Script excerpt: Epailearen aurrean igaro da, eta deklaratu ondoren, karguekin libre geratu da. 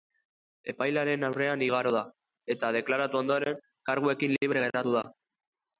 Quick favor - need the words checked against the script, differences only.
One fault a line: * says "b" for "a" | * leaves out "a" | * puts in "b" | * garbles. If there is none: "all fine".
all fine